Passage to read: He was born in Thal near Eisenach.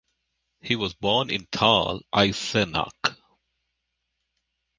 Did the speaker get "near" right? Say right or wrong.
wrong